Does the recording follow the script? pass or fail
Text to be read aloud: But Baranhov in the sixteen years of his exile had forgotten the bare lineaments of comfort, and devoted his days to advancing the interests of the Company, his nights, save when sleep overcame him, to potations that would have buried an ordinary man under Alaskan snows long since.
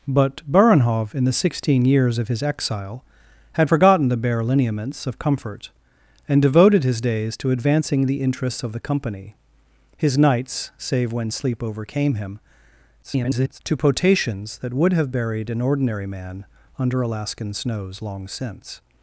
fail